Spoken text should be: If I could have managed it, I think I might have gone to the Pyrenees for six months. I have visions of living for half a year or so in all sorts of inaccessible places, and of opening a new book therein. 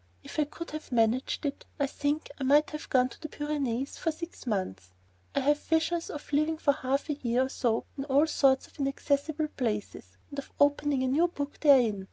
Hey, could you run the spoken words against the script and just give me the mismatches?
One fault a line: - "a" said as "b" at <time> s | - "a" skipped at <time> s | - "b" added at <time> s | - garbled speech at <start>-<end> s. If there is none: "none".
none